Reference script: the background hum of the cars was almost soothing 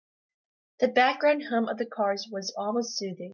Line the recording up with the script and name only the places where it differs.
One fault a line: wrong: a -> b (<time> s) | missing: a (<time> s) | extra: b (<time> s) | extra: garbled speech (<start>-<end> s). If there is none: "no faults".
no faults